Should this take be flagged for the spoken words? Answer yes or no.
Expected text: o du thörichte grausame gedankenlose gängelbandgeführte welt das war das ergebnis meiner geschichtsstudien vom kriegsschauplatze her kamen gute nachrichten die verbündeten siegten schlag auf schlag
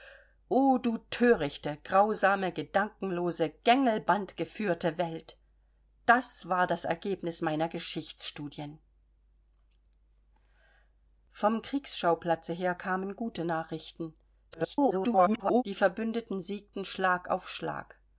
yes